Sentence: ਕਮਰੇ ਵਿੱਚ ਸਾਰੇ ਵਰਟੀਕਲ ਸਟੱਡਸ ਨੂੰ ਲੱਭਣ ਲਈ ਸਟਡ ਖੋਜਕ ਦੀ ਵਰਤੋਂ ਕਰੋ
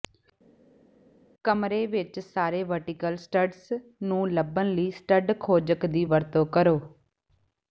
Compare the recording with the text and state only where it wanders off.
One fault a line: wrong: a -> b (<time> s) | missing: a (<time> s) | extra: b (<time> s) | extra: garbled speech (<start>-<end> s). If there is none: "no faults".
no faults